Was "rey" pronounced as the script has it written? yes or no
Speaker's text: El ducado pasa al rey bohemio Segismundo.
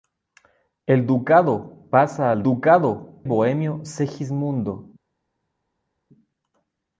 no